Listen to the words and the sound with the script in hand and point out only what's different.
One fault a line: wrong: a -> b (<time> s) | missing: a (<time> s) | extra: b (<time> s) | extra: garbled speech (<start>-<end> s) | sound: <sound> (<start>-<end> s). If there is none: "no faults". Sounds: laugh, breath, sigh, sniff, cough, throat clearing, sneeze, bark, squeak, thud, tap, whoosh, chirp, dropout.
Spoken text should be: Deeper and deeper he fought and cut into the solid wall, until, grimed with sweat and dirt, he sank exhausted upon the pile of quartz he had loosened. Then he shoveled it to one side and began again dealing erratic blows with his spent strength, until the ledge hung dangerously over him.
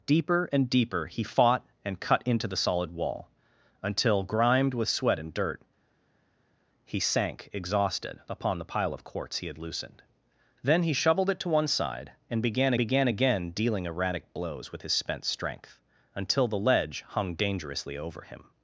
extra: began (12.8 s)